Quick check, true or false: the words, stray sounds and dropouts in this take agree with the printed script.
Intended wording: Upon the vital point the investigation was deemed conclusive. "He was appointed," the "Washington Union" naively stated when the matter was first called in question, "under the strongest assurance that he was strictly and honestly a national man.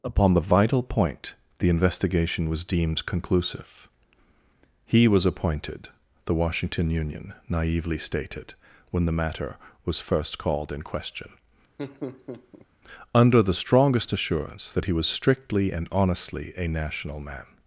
false